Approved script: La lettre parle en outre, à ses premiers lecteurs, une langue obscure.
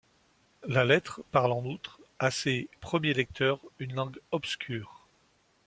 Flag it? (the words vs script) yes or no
no